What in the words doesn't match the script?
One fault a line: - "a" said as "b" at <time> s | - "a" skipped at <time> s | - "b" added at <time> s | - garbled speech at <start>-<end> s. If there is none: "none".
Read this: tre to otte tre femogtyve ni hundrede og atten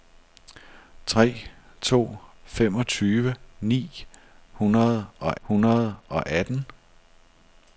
- "otte tre femogtyve ni" said as "femogtyve ni hundrede og" at 2.4 s